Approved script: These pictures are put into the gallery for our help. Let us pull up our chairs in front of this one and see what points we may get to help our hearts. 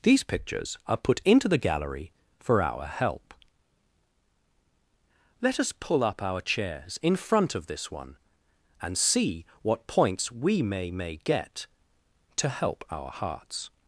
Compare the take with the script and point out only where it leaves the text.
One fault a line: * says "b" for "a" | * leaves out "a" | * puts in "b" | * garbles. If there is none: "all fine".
* puts in "may"